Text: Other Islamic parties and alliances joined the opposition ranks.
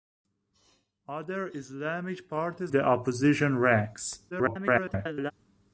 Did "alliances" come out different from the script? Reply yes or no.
yes